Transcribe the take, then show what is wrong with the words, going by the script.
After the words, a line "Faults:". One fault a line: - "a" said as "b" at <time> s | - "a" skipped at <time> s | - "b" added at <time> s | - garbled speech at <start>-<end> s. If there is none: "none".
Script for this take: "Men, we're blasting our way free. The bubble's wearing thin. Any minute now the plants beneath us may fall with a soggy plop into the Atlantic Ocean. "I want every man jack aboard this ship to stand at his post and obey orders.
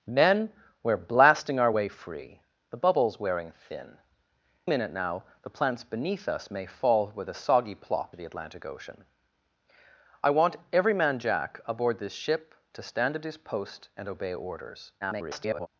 "Men, we're blasting our way free. The bubble's wearing thin. Minute now the plants beneath us may fall with a soggy plop the Atlantic Ocean. "I want every man jack aboard this ship to stand at his post and obey orders. [garbled]
Faults:
- "Any" skipped at 4.0 s
- "into" skipped at 8.2 s
- garbled speech at 15.0-15.7 s